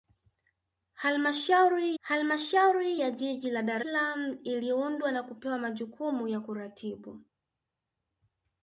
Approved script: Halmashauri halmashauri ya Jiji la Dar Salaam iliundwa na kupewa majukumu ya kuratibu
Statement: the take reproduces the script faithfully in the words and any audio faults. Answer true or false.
true